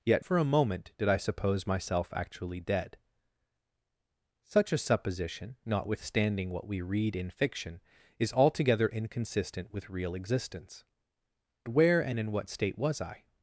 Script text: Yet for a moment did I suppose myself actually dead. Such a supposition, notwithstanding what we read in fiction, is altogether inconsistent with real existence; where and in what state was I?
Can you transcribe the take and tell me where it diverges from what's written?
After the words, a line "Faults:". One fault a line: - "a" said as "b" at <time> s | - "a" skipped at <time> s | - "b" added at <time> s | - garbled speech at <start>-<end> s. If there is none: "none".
Yet for a moment did I suppose myself actually dead. Such a supposition, notwithstanding what we read in fiction, is altogether inconsistent with real existence; where and in what state was I?
Faults:
none